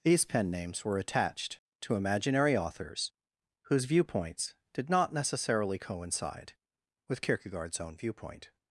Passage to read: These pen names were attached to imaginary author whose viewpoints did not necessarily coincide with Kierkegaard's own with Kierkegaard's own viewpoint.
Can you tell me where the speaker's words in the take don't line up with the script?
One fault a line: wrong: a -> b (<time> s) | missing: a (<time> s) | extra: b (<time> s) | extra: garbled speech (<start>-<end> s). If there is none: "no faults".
wrong: author -> authors (2.6 s)
missing: with Kierkegaard's own (8.0 s)